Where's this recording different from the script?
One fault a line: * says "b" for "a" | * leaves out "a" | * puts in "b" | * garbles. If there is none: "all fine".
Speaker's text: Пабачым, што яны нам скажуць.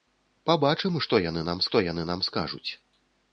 * puts in "што яны нам"